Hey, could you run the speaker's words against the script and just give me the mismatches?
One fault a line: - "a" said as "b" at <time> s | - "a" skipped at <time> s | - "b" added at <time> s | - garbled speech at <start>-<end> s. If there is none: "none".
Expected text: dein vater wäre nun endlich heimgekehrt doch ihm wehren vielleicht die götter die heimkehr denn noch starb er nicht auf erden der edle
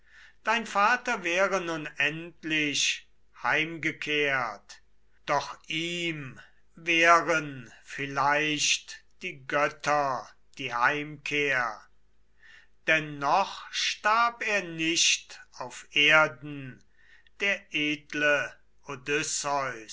none